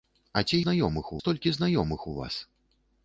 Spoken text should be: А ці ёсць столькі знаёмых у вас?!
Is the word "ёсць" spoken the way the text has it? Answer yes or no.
no